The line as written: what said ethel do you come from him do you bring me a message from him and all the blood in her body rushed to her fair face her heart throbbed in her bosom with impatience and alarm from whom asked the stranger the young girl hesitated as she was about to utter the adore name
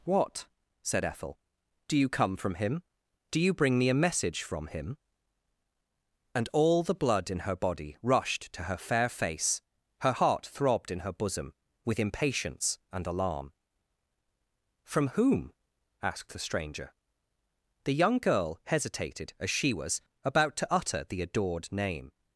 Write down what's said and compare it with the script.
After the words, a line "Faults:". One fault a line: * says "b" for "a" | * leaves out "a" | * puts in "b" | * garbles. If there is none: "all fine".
what said ethel do you come from him do you bring me a message from him and all the blood in her body rushed to her fair face her heart throbbed in her bosom with impatience and alarm from whom asked the stranger the young girl hesitated as she was about to utter the adored name
Faults:
* says "adored" for "adore"